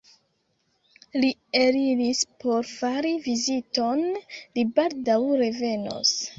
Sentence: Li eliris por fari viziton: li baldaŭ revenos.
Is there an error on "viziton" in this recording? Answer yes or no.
no